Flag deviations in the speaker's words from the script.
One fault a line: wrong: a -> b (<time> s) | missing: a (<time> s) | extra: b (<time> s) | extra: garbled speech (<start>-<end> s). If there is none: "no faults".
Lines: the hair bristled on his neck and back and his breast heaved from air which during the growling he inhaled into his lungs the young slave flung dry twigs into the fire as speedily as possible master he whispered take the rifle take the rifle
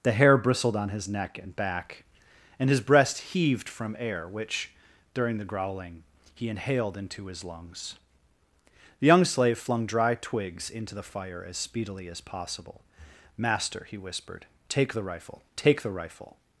no faults